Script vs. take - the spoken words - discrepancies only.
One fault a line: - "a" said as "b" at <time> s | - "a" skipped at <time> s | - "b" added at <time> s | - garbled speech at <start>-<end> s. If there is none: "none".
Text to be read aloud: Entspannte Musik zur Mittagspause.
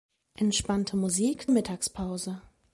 - "zur" skipped at 1.5 s